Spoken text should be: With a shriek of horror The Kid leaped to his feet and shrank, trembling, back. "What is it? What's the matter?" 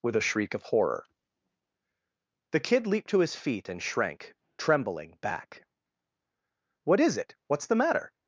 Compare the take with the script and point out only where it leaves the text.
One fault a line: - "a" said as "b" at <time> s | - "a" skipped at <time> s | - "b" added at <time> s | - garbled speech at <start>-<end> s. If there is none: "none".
none